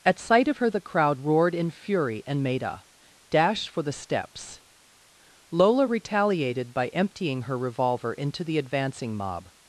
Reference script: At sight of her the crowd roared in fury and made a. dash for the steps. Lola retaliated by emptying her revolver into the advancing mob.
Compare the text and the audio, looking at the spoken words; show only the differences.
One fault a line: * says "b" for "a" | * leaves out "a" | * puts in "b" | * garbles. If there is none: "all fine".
all fine